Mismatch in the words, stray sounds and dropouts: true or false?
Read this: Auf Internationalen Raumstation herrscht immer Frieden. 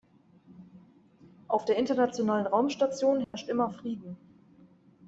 true